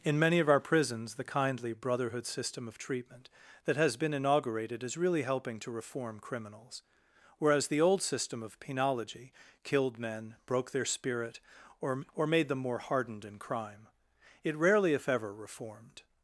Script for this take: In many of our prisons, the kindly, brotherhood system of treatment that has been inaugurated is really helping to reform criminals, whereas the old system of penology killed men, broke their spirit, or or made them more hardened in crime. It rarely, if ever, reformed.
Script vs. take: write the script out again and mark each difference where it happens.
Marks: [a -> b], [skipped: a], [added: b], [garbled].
In many of our prisons, the kindly, brotherhood system of treatment that has been inaugurated is really helping to reform criminals, whereas the old system of penology killed men, broke their spirit, or or made them more hardened in crime. It rarely, if ever, reformed.